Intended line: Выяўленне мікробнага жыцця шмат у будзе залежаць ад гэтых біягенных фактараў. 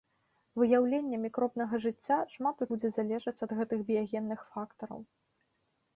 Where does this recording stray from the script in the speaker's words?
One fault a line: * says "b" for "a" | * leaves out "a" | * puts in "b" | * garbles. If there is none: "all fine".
all fine